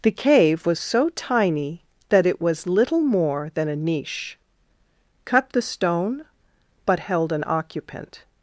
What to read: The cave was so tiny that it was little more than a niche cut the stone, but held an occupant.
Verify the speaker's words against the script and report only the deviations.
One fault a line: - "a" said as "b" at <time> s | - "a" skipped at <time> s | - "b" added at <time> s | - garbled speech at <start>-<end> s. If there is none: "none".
none